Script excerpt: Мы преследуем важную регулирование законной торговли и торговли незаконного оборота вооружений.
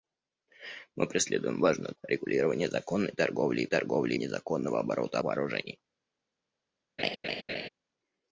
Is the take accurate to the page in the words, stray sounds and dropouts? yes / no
no